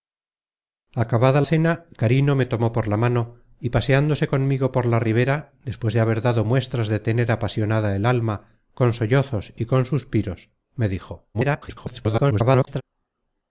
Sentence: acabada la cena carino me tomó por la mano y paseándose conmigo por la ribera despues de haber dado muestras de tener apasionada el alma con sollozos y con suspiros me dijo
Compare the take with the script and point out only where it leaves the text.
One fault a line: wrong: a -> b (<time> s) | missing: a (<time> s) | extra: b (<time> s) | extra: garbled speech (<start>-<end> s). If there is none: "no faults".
missing: la (1.4 s)
extra: garbled speech (11.3-12.8 s)